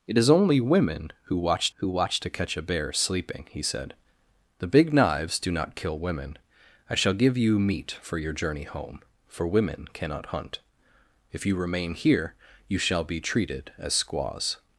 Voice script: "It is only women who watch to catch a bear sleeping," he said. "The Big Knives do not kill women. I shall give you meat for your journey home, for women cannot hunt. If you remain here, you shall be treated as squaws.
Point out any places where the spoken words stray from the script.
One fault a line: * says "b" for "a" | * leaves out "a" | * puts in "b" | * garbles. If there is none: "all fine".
* puts in "who watch"